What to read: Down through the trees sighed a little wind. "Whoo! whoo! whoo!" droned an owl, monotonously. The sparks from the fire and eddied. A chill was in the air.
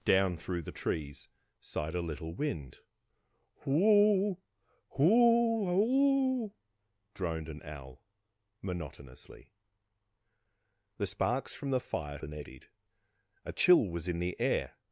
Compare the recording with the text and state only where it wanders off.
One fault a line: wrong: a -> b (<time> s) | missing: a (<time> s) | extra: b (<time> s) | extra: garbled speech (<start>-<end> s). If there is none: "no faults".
no faults